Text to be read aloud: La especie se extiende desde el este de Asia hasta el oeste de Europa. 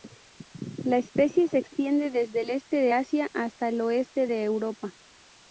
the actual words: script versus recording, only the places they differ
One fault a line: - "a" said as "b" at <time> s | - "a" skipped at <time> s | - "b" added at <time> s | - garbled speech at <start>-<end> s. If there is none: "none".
none